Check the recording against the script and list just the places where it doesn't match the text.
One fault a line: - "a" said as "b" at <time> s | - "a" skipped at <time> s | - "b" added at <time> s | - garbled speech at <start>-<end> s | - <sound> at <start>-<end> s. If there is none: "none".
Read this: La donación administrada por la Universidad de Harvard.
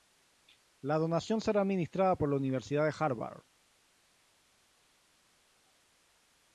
- "será" added at 1.4 s